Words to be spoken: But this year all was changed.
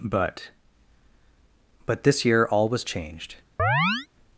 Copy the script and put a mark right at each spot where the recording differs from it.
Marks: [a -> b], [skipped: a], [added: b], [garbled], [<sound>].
But [added: but] this year all was changed. [chirp]